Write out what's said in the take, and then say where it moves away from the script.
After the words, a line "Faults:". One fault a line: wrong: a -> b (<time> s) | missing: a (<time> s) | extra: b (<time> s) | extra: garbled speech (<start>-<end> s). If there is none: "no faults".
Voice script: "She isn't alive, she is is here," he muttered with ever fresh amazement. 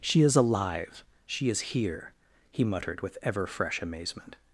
"She is alive, she is here," he muttered with ever fresh amazement.
Faults:
wrong: isn't -> is (0.2 s)
missing: is (1.6 s)